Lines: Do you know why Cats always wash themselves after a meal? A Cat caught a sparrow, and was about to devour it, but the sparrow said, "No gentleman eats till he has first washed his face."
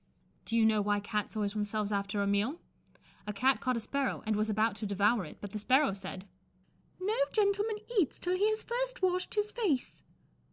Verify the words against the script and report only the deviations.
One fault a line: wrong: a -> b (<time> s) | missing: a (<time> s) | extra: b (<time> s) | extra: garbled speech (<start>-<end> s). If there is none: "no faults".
missing: wash (1.6 s)